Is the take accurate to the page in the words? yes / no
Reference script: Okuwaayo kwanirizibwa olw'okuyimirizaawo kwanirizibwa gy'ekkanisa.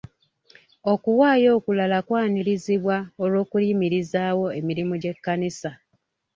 no